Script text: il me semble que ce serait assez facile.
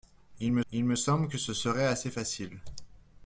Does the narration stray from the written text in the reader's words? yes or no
yes